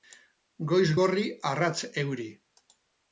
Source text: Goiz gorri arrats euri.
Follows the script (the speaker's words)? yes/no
yes